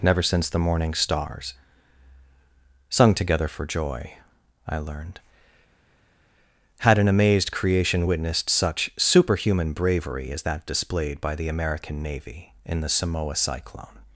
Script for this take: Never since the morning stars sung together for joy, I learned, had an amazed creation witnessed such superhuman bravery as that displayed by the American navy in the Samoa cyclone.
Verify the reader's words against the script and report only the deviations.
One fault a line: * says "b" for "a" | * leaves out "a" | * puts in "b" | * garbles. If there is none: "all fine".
all fine